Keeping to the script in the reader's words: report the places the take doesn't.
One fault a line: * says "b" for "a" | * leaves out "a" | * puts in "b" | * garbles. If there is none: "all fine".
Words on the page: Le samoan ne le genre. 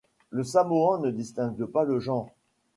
* puts in "distingue pas"